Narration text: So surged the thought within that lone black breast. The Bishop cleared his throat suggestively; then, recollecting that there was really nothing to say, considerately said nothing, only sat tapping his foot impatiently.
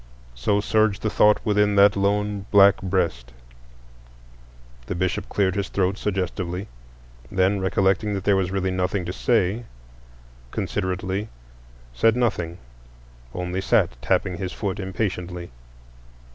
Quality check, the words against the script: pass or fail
pass